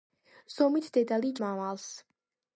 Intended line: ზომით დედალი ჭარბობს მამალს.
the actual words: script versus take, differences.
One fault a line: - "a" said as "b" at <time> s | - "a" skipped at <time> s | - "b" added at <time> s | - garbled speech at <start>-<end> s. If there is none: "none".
- "ჭარბობს" skipped at 1.3 s